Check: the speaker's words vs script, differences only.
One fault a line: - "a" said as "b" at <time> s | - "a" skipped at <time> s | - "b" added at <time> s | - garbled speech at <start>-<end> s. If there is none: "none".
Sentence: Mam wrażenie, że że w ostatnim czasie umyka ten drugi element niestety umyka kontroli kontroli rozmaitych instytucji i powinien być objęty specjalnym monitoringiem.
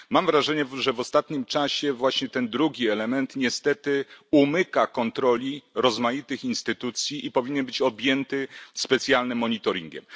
- "że" skipped at 0.9 s
- "umyka" said as "właśnie" at 1.9 s
- "kontroli" skipped at 5.6 s